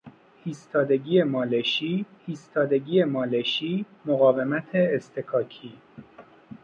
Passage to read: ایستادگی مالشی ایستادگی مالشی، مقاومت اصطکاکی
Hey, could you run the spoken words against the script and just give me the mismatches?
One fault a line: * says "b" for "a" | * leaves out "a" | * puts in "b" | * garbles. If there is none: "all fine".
all fine